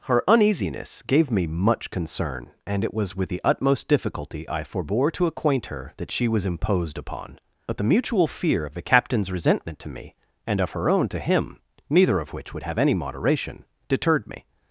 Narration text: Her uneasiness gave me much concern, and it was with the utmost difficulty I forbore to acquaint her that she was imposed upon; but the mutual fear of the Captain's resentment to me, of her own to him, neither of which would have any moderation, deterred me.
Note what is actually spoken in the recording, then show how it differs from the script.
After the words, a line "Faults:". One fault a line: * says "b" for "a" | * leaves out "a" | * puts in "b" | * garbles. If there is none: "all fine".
Her uneasiness gave me much concern, and it was with the utmost difficulty I forbore to acquaint her that she was imposed upon; but the mutual fear of the Captain's resentment to me, and of her own to him, neither of which would have any moderation, deterred me.
Faults:
* puts in "and"